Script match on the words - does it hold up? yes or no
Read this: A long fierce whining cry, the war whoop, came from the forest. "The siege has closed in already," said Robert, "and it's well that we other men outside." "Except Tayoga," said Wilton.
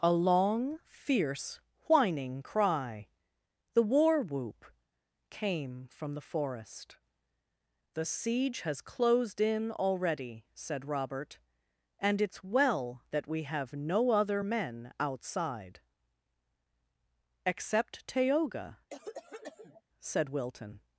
no